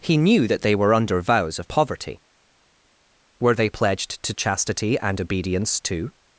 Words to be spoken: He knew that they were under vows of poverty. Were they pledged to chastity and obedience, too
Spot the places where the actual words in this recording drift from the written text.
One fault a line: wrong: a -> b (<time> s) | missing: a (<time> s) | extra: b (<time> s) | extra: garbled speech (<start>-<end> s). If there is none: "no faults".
no faults